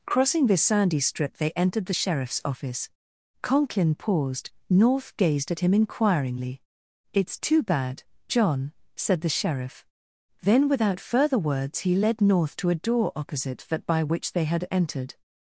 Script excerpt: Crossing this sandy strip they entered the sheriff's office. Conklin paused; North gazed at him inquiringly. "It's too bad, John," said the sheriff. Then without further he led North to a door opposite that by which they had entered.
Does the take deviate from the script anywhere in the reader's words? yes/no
yes